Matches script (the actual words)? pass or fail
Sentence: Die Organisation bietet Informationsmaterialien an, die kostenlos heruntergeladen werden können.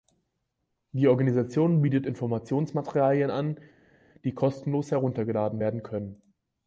pass